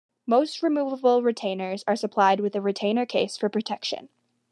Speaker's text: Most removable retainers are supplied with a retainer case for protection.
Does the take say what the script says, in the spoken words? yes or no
yes